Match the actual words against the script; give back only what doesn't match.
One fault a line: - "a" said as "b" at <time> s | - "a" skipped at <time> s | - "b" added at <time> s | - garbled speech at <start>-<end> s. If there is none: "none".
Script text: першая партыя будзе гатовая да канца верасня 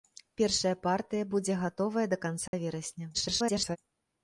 - garbled speech at 3.1-3.8 s